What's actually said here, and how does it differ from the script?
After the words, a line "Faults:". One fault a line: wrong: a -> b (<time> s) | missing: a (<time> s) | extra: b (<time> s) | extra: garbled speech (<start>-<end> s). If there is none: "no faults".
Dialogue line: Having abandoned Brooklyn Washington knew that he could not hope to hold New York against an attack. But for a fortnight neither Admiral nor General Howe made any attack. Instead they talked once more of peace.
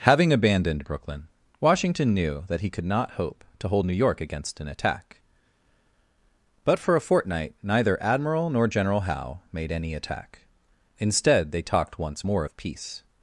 Having abandoned Brooklyn Washington knew that he could not hope to hold New York against an attack. But for a fortnight neither Admiral nor General Howe made any attack. Instead they talked once more of peace.
Faults:
no faults